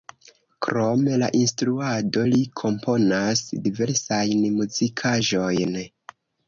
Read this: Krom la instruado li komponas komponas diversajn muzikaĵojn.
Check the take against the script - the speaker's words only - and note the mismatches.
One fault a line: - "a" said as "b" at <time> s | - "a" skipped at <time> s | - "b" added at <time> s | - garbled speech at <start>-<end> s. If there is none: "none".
- "komponas" skipped at 3.5 s